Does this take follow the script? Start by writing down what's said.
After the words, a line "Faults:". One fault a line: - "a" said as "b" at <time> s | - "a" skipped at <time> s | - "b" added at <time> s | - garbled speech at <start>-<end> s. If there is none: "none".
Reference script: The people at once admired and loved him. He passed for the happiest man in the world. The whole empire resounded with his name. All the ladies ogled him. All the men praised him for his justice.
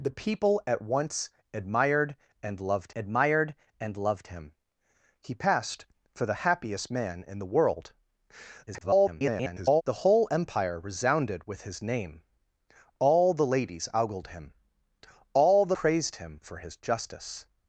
The people at once admired and loved admired and loved him. He passed for the happiest man in the world. [garbled] The whole empire resounded with his name. All the ladies ogled him. All the praised him for his justice.
Faults:
- "admired and loved" added at 2.9 s
- garbled speech at 8.7-9.8 s
- "men" skipped at 15.8 s